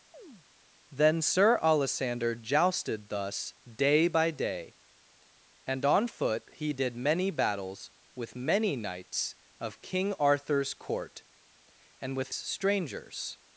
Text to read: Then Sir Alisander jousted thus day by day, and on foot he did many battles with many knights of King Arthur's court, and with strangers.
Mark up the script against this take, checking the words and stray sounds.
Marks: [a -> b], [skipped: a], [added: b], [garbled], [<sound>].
[chirp] Then Sir Alisander jousted thus day by day, and on foot he did many battles with many knights of King Arthur's court, and with strangers.